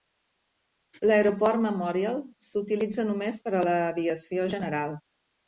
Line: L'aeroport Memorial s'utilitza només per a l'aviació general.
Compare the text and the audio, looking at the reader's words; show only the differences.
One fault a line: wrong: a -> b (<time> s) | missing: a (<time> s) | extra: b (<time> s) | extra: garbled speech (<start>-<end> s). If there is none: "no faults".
no faults